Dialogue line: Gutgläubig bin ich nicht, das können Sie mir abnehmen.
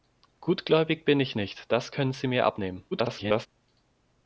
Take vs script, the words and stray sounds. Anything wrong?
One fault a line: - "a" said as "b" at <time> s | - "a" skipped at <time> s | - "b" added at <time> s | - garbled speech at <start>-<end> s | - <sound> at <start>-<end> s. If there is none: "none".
- garbled speech at 2.9-3.5 s